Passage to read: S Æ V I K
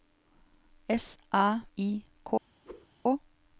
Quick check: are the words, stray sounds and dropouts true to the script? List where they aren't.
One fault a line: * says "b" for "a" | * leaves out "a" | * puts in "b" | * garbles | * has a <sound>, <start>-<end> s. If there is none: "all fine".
* leaves out "V"
* has a whoosh, 2.6-2.9 s